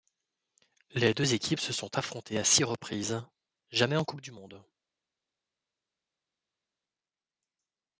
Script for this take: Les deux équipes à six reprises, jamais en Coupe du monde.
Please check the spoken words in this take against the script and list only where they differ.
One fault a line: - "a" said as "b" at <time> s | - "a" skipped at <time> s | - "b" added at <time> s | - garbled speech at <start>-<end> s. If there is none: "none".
- "se sont affrontées" added at 1.6 s